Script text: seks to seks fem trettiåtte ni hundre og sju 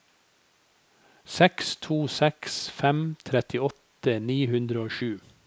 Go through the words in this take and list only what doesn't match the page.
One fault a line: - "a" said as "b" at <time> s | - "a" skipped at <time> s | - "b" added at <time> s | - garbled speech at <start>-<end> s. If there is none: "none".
none